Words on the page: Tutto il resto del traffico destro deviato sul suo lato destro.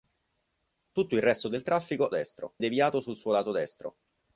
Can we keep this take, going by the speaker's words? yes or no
yes